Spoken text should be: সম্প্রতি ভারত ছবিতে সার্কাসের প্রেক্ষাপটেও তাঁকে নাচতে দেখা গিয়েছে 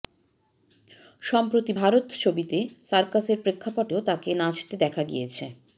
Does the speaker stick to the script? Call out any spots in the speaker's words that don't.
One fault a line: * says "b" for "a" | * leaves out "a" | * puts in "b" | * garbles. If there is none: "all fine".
all fine